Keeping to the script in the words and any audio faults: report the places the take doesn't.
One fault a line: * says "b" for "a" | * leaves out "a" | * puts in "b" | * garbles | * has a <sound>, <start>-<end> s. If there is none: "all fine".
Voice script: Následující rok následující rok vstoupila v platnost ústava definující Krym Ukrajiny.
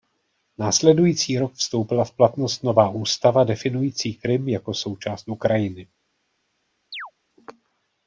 * leaves out "následující rok"
* puts in "nová"
* puts in "jako součást"
* has a chirp, 6.9-7.1 s